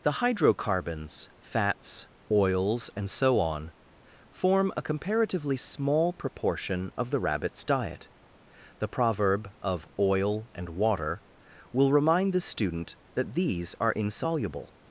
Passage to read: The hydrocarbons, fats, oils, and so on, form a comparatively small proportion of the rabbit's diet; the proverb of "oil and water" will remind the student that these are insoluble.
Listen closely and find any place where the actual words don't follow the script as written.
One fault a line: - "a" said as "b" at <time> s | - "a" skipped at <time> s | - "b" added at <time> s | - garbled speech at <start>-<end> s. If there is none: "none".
none